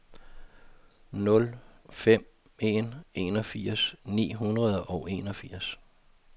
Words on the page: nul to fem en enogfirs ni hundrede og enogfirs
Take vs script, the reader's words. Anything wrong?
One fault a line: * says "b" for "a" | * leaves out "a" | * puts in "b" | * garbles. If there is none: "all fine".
* leaves out "to"